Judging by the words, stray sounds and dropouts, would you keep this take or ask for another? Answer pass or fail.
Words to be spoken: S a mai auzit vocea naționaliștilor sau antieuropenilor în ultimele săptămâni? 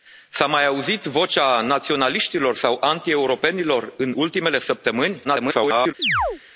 fail